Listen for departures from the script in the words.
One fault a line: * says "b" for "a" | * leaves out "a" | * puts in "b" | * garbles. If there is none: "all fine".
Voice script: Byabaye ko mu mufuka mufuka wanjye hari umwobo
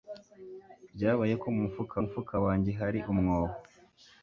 all fine